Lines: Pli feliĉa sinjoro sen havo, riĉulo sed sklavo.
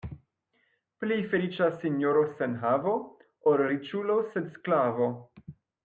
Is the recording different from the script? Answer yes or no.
yes